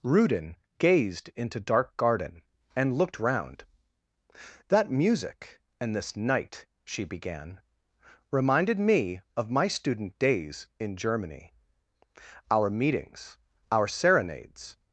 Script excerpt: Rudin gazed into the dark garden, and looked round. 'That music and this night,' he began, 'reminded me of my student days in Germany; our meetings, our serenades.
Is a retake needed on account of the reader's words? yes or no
yes